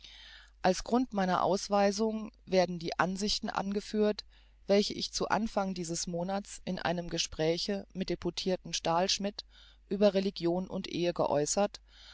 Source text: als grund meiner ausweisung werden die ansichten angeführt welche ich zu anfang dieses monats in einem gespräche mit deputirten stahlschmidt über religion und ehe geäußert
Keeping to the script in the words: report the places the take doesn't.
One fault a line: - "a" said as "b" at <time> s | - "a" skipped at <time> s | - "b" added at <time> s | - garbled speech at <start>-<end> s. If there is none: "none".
none